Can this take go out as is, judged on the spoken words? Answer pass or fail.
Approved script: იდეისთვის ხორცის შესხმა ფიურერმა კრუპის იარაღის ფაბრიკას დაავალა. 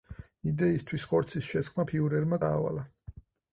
fail